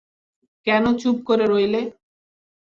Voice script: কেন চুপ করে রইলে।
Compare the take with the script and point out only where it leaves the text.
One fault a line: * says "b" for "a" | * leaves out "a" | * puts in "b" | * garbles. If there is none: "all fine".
all fine